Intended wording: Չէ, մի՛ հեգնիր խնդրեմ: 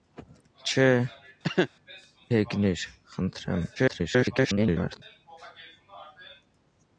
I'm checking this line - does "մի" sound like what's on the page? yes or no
no